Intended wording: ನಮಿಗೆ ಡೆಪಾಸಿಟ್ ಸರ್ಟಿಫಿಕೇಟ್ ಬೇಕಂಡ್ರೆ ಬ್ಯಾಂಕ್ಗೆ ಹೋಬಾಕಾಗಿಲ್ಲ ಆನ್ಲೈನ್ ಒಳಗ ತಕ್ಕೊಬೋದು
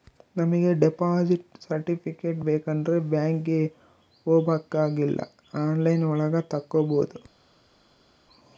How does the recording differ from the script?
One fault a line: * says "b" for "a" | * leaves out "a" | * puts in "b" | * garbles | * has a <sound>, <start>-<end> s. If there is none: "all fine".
all fine